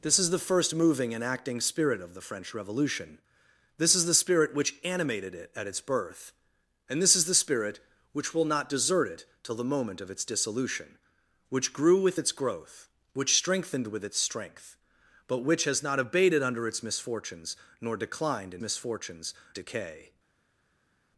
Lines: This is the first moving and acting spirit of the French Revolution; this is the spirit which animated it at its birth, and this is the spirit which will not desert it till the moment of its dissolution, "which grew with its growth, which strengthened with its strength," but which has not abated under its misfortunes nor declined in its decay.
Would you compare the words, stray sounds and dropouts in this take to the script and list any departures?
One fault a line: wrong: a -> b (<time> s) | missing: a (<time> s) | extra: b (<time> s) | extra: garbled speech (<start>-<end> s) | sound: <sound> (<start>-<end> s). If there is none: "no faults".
wrong: its -> misfortunes (18.6 s)